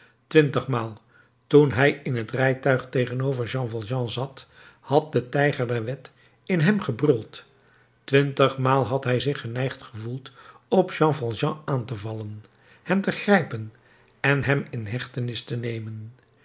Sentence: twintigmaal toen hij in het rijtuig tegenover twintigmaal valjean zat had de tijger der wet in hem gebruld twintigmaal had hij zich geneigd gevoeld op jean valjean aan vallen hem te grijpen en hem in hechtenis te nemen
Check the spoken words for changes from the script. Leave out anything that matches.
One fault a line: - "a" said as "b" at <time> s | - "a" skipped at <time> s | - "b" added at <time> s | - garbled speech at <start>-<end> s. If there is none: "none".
- "twintigmaal" said as "jean" at 3.5 s
- "te" added at 11.9 s